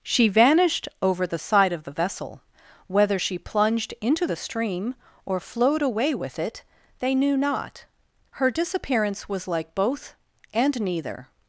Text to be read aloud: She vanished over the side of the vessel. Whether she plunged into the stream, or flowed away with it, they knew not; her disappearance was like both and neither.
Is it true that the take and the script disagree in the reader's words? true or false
false